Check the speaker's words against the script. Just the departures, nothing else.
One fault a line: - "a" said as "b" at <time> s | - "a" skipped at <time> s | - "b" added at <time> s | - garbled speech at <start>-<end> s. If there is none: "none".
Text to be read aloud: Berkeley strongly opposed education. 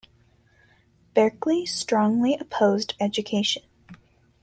none